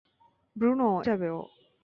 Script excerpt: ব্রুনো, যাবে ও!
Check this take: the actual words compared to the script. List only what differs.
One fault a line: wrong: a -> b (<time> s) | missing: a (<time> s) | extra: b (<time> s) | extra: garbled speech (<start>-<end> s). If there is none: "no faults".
no faults